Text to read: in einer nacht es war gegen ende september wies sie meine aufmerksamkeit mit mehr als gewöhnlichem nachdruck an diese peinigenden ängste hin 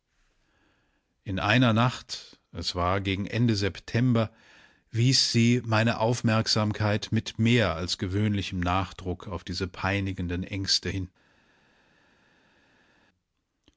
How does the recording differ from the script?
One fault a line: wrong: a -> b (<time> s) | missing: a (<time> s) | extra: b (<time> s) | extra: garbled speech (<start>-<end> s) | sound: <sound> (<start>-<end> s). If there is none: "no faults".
wrong: an -> auf (9.3 s)